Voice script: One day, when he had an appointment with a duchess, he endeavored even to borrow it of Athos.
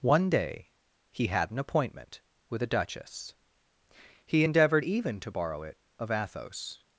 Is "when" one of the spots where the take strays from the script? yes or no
yes